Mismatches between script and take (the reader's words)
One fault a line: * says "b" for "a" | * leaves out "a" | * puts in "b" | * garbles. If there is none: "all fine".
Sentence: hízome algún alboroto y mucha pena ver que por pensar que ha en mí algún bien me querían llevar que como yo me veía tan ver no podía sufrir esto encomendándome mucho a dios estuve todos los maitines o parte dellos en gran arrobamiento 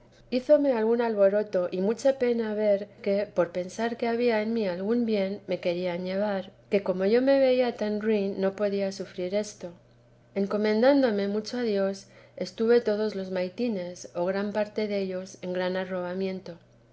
* says "había" for "ha"
* says "ruin" for "ver"
* puts in "gran"